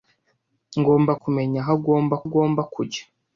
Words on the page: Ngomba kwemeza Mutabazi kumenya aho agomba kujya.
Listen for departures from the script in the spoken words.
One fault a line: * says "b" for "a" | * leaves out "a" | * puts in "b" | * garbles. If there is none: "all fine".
* leaves out "kwemeza Mutabazi"
* puts in "agomba"